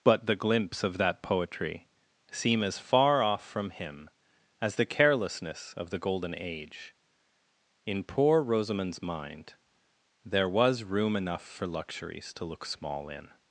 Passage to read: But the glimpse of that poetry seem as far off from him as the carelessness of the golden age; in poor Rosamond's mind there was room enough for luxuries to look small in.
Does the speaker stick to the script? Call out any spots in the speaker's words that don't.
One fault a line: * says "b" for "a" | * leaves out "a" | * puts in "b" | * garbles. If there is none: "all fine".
all fine